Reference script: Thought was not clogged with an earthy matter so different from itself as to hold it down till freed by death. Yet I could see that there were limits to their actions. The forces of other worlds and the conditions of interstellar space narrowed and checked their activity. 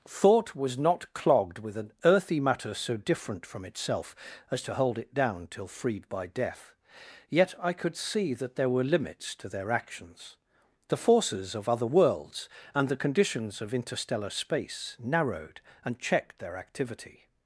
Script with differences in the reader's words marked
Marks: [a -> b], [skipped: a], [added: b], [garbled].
Thought was not clogged with an earthy matter so different from itself as to hold it down till freed by death. Yet I could see that there were limits to their actions. The forces of other worlds and the conditions of interstellar space narrowed and checked their activity.